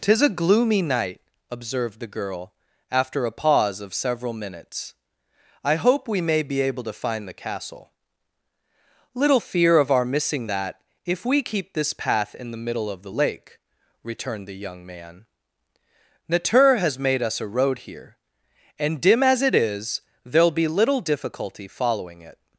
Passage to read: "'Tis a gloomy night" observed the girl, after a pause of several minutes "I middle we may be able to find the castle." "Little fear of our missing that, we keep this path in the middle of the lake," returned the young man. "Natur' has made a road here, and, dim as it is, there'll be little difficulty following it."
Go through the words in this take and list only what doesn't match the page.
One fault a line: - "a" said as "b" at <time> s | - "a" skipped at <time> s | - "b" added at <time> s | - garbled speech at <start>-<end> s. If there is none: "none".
- "middle" said as "hope" at 5.8 s
- "if" added at 11.0 s
- "us" added at 17.2 s